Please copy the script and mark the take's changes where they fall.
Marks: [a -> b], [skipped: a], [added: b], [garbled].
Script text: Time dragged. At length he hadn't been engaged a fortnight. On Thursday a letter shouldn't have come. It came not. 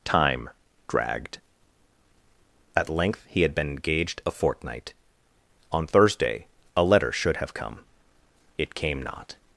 Time dragged. At length he [hadn't -> had] been engaged a fortnight. On Thursday a letter [shouldn't -> should] have come. It came not.